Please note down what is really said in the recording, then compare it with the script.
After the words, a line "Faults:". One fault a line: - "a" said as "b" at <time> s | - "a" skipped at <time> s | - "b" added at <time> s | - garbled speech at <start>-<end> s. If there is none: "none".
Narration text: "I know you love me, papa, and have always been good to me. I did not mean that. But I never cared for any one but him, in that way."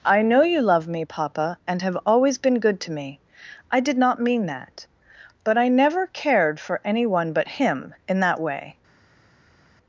"I know you love me, papa, and have always been good to me. I did not mean that. But I never cared for any one but him, in that way."
Faults:
none